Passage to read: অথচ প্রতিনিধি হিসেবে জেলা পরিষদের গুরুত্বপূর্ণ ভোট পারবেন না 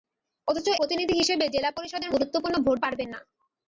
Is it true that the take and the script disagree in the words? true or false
false